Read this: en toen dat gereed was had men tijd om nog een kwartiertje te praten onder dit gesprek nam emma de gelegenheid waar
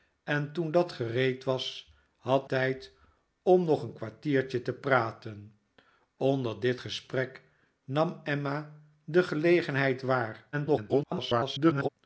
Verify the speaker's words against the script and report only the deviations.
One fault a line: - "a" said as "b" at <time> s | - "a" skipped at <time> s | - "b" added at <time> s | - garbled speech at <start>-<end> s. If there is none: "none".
- "men" skipped at 2.5 s
- garbled speech at 10.5-11.9 s